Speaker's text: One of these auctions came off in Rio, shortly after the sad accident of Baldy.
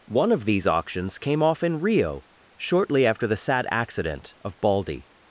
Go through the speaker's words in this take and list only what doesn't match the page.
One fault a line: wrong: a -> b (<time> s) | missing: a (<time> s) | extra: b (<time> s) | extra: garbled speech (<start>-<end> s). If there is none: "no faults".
no faults